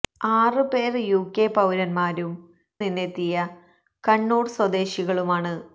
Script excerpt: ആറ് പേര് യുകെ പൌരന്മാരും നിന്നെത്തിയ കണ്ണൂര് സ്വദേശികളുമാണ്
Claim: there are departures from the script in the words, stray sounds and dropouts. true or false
false